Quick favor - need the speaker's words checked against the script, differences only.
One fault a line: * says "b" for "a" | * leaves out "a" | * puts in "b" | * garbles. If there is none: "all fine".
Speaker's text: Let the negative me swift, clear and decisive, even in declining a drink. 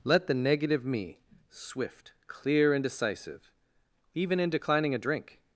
all fine